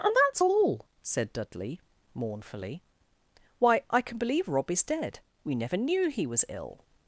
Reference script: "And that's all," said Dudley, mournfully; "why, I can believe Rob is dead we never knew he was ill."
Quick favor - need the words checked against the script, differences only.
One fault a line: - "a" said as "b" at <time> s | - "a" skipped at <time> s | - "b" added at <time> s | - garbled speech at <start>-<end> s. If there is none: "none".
none